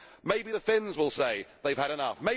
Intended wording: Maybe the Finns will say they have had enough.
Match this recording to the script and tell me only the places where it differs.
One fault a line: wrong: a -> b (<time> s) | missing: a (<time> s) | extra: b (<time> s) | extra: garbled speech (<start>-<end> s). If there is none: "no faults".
no faults